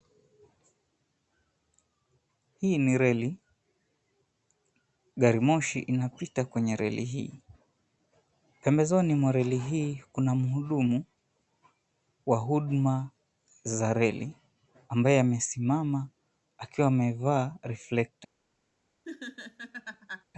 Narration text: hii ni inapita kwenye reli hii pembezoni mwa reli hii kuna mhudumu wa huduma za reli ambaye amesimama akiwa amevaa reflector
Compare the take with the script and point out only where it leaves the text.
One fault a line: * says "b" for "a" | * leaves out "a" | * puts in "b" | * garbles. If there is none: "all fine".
* puts in "reli gari moshi"